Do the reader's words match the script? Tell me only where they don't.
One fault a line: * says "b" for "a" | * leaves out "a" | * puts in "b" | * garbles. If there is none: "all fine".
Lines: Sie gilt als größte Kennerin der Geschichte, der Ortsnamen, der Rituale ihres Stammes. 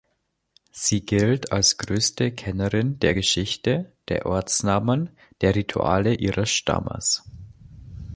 all fine